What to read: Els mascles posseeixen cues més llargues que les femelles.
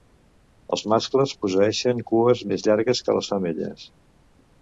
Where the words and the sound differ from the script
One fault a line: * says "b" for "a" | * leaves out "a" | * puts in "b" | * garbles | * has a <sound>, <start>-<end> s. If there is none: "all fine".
all fine